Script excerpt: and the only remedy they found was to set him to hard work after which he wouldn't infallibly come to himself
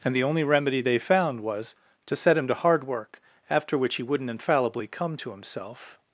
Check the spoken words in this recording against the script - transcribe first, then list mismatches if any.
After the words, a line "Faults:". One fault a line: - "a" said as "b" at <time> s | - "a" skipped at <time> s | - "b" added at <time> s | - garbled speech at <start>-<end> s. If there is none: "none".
and the only remedy they found was to set him to hard work after which he wouldn't infallibly come to himself
Faults:
none